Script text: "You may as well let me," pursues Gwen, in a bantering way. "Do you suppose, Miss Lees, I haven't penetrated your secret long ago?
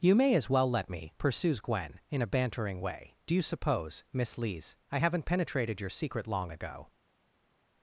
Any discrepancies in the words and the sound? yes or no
no